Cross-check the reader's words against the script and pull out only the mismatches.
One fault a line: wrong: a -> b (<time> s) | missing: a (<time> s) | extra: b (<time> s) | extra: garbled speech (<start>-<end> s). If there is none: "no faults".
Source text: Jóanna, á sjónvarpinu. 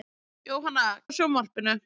no faults